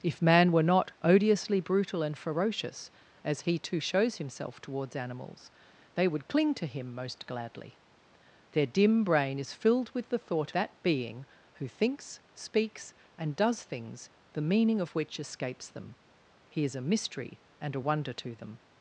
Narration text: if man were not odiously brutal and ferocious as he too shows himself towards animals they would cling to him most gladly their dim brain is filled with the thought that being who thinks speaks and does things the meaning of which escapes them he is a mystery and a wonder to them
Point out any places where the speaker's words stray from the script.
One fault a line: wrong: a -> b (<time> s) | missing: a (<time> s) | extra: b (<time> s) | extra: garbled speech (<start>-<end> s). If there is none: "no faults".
no faults